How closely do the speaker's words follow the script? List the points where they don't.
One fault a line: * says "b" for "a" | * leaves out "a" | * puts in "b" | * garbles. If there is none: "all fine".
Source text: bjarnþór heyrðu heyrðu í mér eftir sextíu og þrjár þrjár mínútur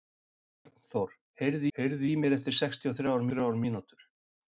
all fine